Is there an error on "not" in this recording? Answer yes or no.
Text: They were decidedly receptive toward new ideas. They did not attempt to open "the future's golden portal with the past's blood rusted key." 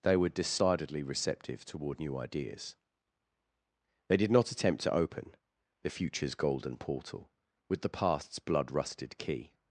no